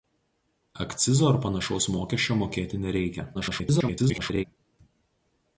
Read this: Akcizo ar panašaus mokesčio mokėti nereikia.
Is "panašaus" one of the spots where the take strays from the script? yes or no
no